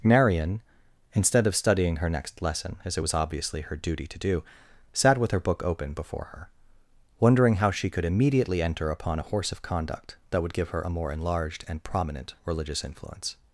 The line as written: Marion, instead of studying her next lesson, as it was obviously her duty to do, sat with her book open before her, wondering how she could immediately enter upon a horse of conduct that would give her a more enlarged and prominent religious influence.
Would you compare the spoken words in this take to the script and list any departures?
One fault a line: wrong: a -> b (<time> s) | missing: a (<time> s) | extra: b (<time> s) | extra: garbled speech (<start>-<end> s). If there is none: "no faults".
no faults